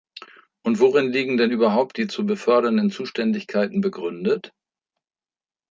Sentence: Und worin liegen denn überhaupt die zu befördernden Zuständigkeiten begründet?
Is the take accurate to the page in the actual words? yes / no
yes